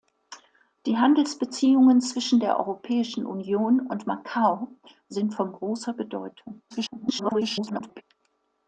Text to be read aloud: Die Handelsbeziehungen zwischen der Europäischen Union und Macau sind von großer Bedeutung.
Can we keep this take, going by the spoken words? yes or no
no